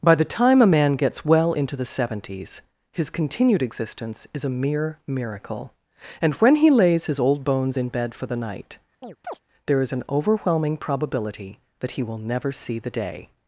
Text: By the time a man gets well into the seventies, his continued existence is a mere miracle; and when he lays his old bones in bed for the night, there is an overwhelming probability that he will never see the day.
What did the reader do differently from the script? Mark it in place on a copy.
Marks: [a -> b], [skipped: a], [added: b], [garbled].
By the time a man gets well into the seventies, his continued existence is a mere miracle; and when he lays his old bones in bed for the night, there is an overwhelming probability that he will never see the day.